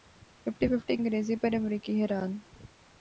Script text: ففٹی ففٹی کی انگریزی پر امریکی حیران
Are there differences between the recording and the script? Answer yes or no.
yes